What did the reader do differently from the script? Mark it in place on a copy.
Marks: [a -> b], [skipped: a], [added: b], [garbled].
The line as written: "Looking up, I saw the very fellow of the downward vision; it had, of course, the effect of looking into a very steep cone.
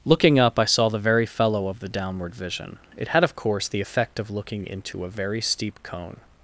"Looking up, I saw the very fellow of the downward vision; it had, of course, the effect of looking into a very steep cone.